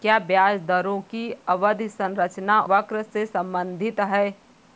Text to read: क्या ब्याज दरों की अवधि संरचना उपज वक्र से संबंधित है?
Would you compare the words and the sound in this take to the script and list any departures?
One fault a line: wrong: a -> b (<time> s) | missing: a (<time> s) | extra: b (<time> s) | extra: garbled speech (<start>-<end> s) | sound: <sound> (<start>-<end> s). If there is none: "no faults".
missing: उपज (2.6 s)